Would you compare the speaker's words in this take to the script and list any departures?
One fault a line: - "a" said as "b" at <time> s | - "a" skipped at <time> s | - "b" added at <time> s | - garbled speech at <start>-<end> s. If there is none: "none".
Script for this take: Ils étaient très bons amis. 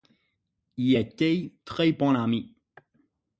none